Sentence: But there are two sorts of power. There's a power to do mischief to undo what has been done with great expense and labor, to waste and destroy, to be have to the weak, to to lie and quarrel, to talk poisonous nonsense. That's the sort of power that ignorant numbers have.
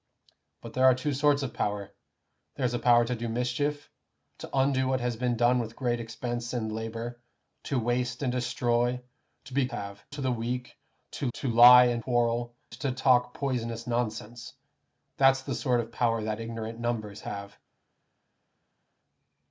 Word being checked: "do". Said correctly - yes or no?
yes